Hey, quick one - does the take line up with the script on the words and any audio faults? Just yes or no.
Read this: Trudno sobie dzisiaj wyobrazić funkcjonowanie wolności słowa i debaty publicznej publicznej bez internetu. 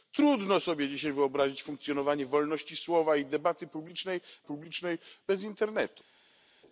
yes